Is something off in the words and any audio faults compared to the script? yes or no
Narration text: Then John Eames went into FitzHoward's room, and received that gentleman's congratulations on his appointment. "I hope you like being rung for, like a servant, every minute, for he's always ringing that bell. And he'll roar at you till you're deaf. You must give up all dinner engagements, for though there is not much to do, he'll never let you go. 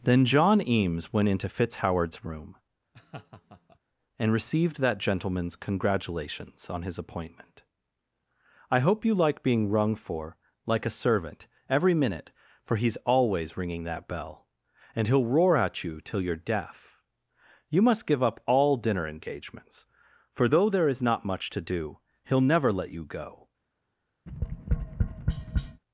yes